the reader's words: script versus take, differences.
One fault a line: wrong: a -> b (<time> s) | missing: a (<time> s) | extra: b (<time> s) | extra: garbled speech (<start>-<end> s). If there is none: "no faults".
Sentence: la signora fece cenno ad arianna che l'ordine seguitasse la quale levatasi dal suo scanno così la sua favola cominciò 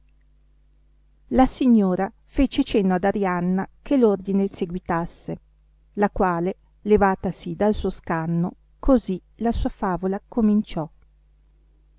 no faults